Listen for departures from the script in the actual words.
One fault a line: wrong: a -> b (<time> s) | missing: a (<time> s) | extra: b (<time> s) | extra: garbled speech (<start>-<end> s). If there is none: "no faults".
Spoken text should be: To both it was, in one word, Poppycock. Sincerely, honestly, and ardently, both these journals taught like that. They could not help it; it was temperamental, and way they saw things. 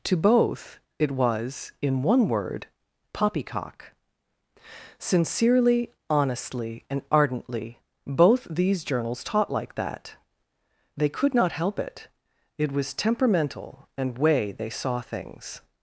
no faults